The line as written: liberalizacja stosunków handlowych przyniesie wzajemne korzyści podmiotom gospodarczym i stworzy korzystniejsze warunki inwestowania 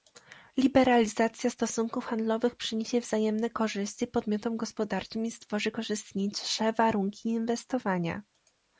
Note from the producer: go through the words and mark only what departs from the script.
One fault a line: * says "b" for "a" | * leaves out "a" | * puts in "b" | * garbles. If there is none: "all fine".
all fine